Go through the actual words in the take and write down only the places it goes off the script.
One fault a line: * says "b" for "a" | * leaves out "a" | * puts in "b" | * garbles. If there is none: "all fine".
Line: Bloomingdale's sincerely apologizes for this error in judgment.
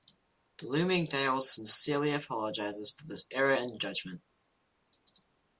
all fine